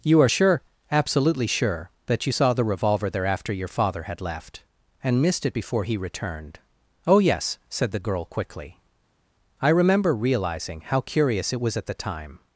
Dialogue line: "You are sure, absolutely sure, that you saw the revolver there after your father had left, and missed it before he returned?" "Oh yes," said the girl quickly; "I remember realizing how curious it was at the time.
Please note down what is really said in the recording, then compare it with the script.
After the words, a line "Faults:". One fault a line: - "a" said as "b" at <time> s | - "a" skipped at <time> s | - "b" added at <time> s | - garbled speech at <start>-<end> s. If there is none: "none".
"You are sure, absolutely sure, that you saw the revolver there after your father had left, and missed it before he returned?" "Oh yes," said the girl quickly; "I remember realizing how curious it was at the time.
Faults:
none